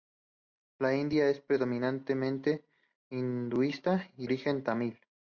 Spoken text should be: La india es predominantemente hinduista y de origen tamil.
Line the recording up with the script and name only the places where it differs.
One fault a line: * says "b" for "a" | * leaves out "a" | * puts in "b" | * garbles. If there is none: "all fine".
* leaves out "de"